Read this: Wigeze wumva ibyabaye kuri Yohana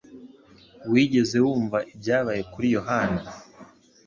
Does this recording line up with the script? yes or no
yes